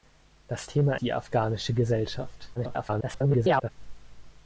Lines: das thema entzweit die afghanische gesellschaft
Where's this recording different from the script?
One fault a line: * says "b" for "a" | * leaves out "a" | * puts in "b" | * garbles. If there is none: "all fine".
* leaves out "entzweit"
* garbles